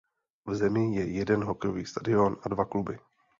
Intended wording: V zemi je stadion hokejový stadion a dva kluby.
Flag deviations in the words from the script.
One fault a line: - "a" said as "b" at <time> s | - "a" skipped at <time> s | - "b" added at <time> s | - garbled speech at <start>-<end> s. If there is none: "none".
- "stadion" said as "jeden" at 1.1 s